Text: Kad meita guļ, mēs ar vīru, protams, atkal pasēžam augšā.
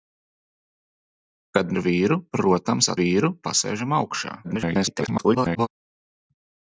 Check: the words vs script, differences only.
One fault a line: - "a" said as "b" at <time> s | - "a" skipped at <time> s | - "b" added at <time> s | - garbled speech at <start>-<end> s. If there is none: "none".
- "meita guļ mēs" skipped at 1.8 s
- "atkal" said as "vīru" at 3.0 s
- garbled speech at 4.4-5.7 s